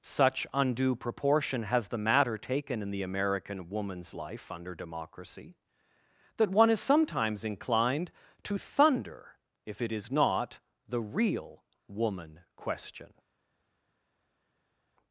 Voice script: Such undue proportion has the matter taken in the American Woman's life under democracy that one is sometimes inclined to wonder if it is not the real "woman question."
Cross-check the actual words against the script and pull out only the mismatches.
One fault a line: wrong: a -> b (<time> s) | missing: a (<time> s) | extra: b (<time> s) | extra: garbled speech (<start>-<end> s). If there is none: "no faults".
wrong: wonder -> thunder (8.6 s)